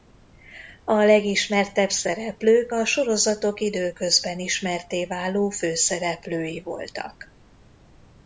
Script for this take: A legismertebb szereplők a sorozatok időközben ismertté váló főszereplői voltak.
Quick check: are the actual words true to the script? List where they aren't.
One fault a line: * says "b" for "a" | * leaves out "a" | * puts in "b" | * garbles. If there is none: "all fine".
all fine